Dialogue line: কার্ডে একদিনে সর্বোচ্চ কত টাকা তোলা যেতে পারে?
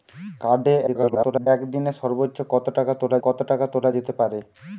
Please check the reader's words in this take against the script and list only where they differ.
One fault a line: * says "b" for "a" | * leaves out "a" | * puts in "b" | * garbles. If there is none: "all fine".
* garbles
* puts in "কত টাকা তোলা"